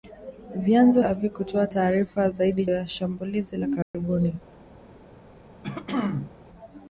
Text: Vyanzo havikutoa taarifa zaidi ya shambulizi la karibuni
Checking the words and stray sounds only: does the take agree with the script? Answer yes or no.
no